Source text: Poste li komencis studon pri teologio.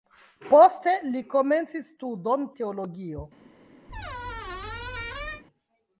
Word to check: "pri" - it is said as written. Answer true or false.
false